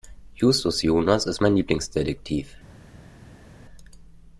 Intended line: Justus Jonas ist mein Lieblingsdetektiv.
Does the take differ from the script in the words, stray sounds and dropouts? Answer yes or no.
no